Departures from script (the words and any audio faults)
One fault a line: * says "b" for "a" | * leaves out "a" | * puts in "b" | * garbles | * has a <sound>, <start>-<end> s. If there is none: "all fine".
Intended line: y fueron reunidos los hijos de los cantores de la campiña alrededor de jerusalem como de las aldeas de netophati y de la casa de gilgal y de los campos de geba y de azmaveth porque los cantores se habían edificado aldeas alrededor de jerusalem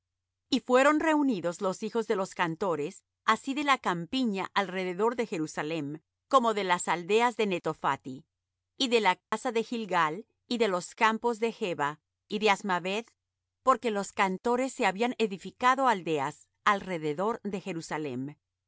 * puts in "así"
* has a dropout, 9.2-9.3 s